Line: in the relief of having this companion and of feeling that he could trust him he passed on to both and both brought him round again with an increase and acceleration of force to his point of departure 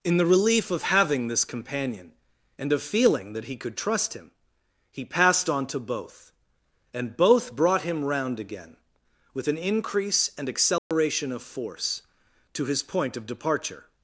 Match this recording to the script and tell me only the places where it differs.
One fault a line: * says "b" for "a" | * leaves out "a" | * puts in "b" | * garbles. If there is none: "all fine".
all fine